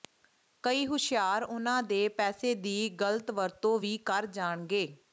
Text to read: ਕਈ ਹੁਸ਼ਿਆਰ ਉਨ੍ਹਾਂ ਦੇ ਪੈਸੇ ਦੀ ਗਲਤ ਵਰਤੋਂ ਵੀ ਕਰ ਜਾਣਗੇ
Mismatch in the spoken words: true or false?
false